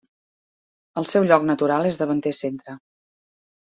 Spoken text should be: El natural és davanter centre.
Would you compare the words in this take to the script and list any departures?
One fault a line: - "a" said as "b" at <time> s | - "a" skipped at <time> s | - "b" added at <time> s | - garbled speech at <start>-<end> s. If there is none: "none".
- "seu lloc" added at 1.1 s